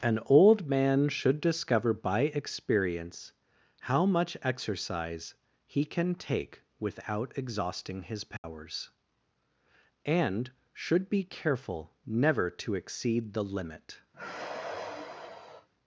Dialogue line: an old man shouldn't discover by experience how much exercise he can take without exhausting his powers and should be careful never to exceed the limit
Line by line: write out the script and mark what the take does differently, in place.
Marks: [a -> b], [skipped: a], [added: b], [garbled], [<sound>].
an old man [shouldn't -> should] discover by experience how much exercise he can take without exhausting his powers [dropout] and should be careful never to exceed the limit [sigh]